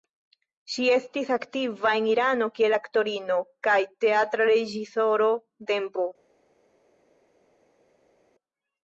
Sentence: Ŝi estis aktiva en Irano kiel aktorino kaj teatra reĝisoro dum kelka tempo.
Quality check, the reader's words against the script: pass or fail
fail